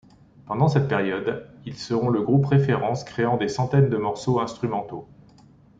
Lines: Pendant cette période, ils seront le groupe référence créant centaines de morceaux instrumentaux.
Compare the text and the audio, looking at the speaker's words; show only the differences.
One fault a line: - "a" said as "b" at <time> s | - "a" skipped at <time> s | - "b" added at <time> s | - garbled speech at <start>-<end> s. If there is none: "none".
- "des" added at 3.3 s